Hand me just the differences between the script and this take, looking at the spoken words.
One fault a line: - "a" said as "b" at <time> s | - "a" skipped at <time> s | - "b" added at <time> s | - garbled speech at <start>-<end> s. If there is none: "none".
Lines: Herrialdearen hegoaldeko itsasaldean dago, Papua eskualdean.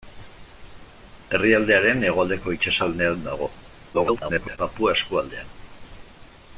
- garbled speech at 3.9-4.6 s